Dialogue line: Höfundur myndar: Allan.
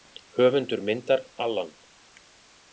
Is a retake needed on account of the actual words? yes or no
no